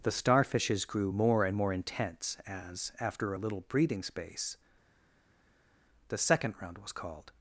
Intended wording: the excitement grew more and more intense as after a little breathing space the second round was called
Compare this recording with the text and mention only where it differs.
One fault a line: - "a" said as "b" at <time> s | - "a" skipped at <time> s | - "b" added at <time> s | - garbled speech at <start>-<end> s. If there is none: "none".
- "excitement" said as "starfishes" at 0.1 s